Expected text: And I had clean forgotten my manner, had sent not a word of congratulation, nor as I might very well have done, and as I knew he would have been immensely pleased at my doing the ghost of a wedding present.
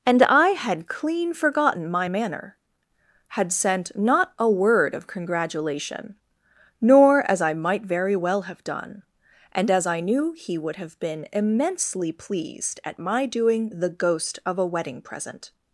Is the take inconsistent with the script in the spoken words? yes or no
no